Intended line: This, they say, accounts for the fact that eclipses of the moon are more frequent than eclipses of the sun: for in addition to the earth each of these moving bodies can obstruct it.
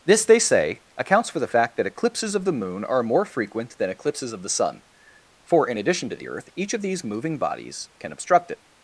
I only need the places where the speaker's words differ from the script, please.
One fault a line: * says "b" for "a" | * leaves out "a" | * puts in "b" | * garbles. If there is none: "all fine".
all fine